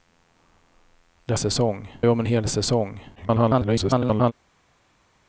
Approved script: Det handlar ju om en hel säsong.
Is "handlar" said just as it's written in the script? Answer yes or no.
no